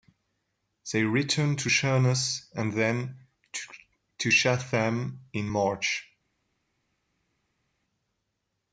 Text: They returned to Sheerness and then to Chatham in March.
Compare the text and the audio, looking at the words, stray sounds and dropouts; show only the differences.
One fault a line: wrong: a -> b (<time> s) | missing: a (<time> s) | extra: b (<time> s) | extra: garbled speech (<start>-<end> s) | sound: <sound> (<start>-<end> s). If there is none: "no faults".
no faults